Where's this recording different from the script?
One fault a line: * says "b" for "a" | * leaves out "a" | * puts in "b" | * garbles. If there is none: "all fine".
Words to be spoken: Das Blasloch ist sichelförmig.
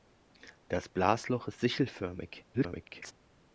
* garbles